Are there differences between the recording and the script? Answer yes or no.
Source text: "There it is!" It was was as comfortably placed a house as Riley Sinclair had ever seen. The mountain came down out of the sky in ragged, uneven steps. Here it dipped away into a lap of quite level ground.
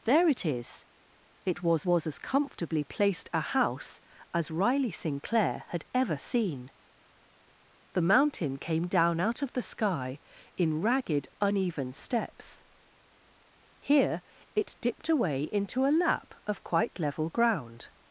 no